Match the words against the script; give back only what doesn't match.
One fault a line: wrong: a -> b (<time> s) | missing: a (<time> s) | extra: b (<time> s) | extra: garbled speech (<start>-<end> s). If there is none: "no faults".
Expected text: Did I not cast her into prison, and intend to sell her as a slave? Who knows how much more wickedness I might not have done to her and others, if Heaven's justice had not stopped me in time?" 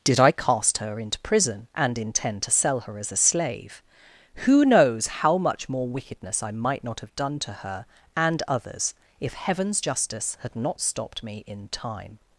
missing: not (0.3 s)